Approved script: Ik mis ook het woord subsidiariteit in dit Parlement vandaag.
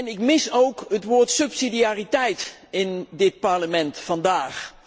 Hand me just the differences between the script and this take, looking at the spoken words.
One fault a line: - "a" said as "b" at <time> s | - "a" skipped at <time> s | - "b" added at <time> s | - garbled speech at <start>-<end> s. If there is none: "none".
none